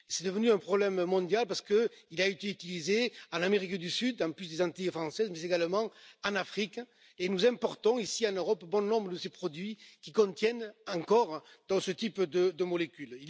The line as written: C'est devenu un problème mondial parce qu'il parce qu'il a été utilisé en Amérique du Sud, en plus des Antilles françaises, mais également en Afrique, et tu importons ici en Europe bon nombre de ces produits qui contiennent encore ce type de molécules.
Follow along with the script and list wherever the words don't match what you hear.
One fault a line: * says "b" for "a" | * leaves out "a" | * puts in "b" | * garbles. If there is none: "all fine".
* leaves out "parce qu'il"
* says "nous" for "tu"